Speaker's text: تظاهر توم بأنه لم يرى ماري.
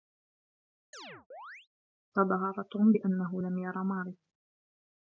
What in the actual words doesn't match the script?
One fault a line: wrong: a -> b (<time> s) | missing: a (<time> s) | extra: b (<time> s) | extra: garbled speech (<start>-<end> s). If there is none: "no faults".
no faults